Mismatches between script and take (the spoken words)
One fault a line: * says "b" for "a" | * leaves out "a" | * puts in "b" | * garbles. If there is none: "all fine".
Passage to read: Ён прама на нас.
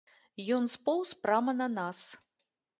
* puts in "споўз"